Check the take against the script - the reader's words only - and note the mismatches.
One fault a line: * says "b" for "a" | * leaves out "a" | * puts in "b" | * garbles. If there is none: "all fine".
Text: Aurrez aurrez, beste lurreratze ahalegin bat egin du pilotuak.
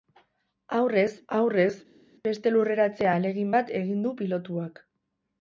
all fine